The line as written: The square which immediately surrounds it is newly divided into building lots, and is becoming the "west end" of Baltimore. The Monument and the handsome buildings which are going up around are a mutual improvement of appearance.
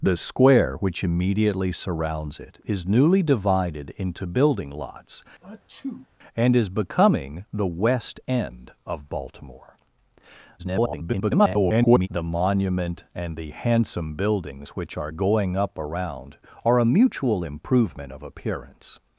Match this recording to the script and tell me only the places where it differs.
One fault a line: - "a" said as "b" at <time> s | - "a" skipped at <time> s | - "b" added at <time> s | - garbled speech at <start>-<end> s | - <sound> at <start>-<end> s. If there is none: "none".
- sneeze at 5.4-6.1 s
- garbled speech at 10.6-12.1 s